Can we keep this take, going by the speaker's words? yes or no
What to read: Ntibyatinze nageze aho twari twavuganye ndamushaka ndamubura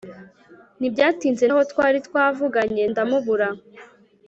no